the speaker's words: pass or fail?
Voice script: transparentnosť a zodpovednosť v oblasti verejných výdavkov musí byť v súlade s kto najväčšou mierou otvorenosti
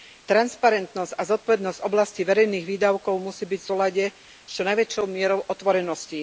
fail